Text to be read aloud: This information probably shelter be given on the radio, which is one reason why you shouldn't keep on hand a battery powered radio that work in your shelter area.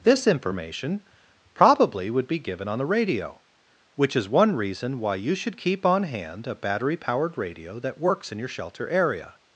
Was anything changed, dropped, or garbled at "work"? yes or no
yes